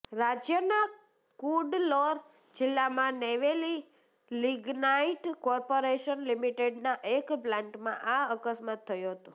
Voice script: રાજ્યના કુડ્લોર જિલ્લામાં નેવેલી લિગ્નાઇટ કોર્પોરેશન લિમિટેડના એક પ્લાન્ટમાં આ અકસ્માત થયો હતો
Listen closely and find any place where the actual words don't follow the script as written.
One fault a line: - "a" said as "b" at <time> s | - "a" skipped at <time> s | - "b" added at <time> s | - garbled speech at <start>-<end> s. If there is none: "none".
none